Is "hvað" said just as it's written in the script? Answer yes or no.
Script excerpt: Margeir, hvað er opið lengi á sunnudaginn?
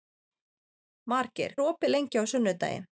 no